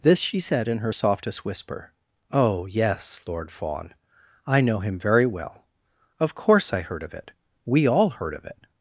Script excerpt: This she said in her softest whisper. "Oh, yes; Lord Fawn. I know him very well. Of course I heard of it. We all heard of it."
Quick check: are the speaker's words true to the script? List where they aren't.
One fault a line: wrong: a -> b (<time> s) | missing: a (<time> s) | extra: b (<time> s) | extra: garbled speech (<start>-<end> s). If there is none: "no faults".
no faults